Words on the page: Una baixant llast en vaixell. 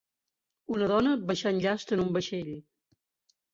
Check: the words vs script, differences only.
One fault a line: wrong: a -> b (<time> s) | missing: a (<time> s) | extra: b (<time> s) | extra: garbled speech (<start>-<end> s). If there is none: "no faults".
extra: dona (0.9 s)
extra: un (2.1 s)